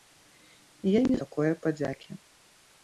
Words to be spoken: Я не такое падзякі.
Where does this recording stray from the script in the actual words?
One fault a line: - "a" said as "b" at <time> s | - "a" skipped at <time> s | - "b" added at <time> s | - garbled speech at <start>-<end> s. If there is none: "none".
none